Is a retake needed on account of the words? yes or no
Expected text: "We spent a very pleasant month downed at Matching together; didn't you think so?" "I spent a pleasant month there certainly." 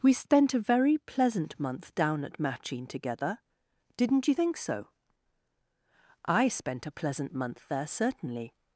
yes